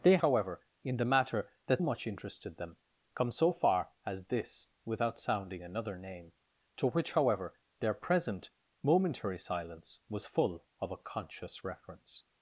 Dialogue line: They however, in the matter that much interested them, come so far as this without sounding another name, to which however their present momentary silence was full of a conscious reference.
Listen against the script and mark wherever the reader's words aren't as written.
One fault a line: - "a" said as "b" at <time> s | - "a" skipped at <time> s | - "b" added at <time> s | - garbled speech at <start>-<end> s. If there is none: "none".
none